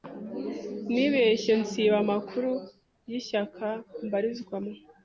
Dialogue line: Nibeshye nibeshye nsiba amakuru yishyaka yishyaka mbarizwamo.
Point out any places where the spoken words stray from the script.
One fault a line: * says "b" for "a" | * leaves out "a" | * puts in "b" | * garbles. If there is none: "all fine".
* leaves out "nibeshye"
* leaves out "yishyaka"